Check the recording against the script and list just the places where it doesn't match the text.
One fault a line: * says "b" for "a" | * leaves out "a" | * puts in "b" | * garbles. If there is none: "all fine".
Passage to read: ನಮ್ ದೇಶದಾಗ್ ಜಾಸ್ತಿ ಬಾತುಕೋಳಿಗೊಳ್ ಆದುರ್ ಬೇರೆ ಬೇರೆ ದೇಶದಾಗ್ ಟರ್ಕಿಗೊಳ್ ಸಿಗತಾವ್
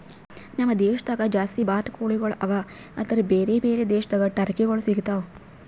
* puts in "ಅವಾ"